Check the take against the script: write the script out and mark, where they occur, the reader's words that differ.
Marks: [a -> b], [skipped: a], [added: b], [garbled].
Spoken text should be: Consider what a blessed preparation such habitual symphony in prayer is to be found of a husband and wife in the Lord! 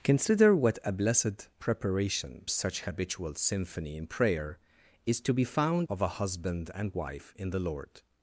Consider what a blessed preparation such habitual symphony in prayer is to be found of a husband and wife in the Lord!